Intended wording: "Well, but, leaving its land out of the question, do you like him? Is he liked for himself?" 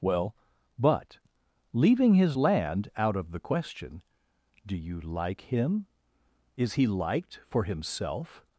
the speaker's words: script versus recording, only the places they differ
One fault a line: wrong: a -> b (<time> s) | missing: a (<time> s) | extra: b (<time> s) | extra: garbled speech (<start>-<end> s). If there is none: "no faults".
wrong: its -> his (2.1 s)